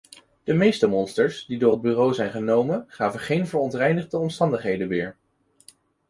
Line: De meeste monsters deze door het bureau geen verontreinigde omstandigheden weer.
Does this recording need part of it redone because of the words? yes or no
yes